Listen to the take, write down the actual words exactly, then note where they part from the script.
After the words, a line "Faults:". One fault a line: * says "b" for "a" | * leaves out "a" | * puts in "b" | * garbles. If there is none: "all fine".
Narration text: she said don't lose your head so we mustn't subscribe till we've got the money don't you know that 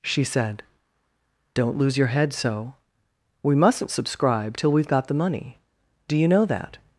she said don't lose your head so we mustn't subscribe till we've got the money do you know that
Faults:
* says "do" for "don't"